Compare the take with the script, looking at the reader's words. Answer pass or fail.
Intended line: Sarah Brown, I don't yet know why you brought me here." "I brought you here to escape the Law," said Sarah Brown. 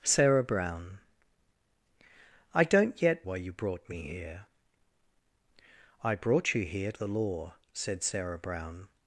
fail